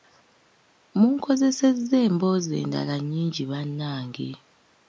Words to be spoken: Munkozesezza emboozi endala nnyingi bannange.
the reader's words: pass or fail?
pass